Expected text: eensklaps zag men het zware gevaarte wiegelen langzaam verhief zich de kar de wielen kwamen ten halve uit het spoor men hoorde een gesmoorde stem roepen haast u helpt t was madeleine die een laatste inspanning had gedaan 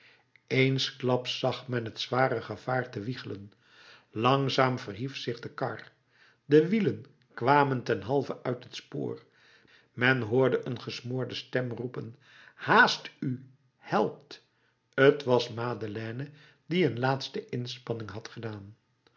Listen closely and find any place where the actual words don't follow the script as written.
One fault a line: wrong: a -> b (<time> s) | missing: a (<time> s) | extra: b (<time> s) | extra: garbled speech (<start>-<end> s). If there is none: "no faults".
no faults